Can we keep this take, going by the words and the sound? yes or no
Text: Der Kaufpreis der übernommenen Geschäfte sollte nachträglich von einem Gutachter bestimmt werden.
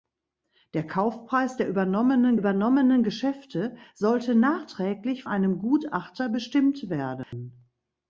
no